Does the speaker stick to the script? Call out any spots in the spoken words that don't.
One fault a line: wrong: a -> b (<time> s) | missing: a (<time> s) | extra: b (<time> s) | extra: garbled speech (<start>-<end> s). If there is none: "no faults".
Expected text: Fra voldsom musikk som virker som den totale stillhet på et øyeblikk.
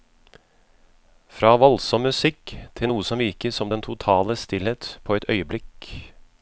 extra: til noe (2.8 s)